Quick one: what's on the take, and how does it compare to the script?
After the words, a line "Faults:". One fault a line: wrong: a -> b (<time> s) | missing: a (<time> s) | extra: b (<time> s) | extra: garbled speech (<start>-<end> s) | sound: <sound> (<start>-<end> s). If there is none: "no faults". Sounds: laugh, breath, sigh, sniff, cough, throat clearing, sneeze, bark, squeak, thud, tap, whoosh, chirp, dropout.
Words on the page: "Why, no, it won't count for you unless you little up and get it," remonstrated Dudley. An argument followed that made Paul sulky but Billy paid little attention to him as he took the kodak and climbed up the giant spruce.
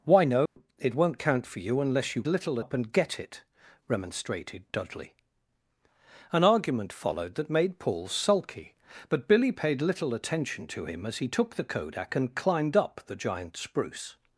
"Why, no, it won't count for you unless you little up and get it," remonstrated Dudley. An argument followed that made Paul sulky but Billy paid little attention to him as he took the kodak and climbed up the giant spruce.
Faults:
sound: dropout (0.5-0.6 s)